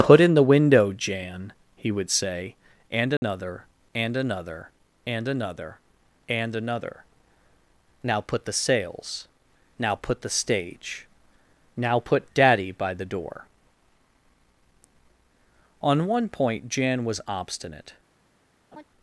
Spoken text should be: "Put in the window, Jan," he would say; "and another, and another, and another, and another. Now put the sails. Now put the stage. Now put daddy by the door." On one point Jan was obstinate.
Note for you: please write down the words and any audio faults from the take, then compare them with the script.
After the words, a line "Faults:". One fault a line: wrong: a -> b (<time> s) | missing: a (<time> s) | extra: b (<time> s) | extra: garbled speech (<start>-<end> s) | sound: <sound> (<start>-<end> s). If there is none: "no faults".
"Put in the window, Jan," he would say; "and another, and another, and another, and another. Now put the sails. Now put the stage. Now put daddy by the door." On one point Jan was obstinate.
Faults:
sound: dropout (3.2-3.2 s)
sound: laugh (18.7-18.8 s)